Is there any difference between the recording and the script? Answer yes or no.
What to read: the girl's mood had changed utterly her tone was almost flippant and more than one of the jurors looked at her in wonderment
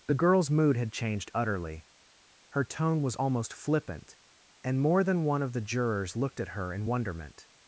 no